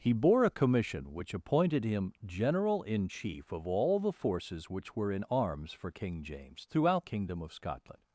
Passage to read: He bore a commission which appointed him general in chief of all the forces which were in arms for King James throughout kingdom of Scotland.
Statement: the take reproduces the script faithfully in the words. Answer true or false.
true